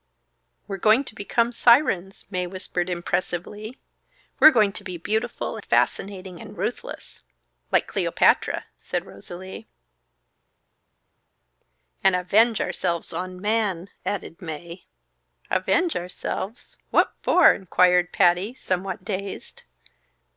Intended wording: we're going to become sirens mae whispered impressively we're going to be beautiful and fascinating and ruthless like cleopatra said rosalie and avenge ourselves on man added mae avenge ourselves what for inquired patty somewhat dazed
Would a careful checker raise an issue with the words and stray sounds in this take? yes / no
yes